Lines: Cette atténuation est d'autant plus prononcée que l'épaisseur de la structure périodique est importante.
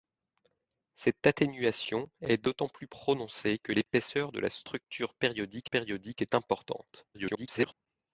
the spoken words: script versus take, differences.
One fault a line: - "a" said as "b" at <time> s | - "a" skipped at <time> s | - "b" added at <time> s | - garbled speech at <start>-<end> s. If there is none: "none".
- "périodique" added at 5.6 s
- garbled speech at 7.1-7.7 s